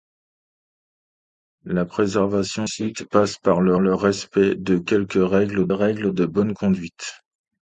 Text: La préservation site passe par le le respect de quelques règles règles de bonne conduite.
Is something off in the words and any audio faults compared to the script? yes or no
no